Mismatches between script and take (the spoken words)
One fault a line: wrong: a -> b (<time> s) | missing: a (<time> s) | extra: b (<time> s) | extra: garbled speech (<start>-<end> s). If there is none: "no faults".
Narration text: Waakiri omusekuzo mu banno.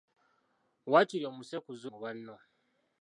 no faults